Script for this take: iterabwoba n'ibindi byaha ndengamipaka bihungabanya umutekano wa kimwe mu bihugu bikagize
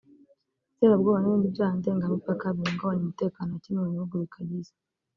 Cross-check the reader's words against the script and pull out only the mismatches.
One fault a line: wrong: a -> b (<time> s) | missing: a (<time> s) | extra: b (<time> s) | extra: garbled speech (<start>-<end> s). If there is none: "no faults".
no faults